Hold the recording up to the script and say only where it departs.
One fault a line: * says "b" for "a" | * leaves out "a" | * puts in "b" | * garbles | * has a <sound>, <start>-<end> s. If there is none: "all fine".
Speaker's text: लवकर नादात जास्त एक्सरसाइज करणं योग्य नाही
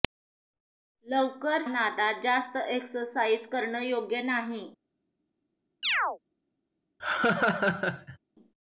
* has a chirp, 5.8-6.2 s
* has a laugh, 7.0-8.2 s